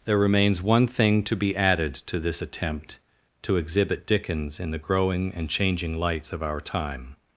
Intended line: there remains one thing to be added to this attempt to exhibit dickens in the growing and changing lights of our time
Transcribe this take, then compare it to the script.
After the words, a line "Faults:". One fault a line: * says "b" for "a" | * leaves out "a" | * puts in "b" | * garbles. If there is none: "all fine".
there remains one thing to be added to this attempt to exhibit dickens in the growing and changing lights of our time
Faults:
all fine